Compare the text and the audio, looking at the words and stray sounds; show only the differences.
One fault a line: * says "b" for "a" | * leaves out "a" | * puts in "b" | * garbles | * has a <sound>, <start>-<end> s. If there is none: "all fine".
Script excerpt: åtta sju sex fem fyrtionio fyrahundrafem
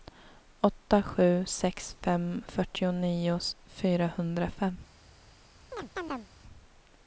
* has a chirp, 5.7-6.3 s